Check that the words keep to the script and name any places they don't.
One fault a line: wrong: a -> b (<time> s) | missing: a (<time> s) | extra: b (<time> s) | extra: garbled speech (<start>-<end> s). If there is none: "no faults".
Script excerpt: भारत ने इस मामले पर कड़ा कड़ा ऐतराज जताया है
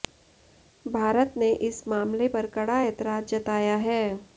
missing: कड़ा (2.8 s)